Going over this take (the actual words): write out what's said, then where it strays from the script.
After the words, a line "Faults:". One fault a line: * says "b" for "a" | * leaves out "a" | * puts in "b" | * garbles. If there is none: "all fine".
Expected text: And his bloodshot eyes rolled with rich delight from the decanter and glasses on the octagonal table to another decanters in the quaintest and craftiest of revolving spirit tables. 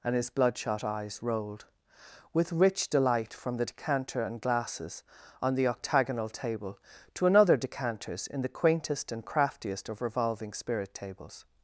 And his bloodshot eyes rolled with rich delight from the decanter and glasses on the octagonal table to another decanters in the quaintest and craftiest of revolving spirit tables.
Faults:
all fine